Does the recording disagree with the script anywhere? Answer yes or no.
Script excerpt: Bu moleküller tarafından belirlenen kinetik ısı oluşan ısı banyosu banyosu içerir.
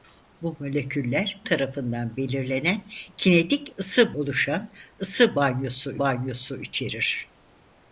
no